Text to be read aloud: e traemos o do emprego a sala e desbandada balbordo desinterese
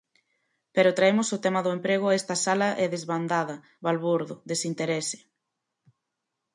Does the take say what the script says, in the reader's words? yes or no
no